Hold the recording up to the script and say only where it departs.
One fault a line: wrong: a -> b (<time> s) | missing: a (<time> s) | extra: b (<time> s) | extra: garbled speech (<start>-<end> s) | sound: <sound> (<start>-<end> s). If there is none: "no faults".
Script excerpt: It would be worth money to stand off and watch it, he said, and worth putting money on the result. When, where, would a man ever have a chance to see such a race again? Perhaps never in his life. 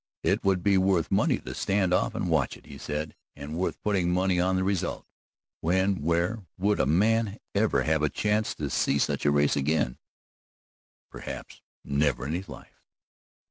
no faults